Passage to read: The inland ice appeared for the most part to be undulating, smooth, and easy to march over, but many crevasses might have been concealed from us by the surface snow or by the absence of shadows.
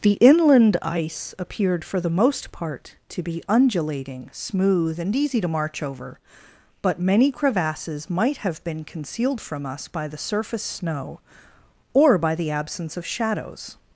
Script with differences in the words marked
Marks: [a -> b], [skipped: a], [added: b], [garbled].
The inland ice appeared for the most part to be undulating, smooth, and easy to march over, but many crevasses might have been concealed from us by the surface snow or by the absence of shadows.